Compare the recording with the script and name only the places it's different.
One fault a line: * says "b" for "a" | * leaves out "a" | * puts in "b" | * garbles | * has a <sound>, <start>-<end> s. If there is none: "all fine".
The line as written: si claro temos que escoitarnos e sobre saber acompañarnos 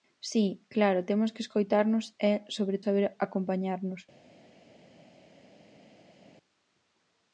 all fine